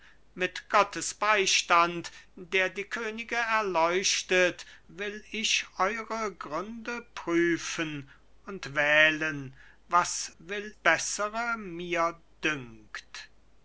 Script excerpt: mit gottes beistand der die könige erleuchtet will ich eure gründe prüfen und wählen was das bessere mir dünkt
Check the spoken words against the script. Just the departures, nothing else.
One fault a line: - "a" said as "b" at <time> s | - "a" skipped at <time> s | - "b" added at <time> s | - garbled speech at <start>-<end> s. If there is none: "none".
- "das" said as "will" at 10.4 s